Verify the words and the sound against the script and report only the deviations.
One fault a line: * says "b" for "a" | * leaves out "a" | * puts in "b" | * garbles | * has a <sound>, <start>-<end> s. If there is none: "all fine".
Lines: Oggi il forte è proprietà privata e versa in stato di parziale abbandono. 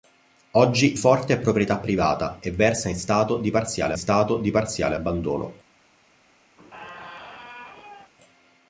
* leaves out "il"
* puts in "stato di parziale"
* has a squeak, 6.6-8.1 s